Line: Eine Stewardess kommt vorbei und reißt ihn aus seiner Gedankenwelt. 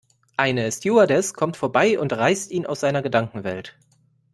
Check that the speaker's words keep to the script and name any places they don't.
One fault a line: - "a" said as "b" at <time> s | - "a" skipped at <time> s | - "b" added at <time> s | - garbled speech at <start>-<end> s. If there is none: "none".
none